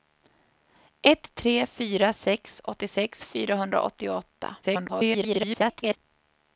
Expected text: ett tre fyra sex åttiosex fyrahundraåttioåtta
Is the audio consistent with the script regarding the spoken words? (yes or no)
no